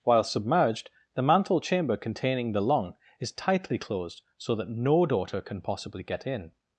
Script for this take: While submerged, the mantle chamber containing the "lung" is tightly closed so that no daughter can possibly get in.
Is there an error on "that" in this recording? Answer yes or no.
no